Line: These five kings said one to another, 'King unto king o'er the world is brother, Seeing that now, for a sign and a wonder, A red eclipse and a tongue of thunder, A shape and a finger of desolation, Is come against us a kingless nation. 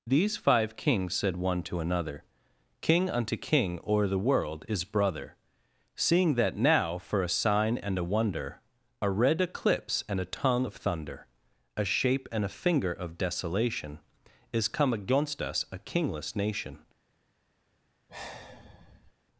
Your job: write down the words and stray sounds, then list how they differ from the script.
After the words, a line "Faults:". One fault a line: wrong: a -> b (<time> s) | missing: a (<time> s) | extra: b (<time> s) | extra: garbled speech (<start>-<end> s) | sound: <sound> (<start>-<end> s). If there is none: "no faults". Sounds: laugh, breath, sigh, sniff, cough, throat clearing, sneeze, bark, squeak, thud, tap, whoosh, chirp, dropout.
These five kings said one to another, 'King unto king o'er the world is brother, Seeing that now, for a sign and a wonder, A red eclipse and a tongue of thunder, A shape and a finger of desolation, Is come against us a kingless nation.
Faults:
sound: sigh (18.1-19.1 s)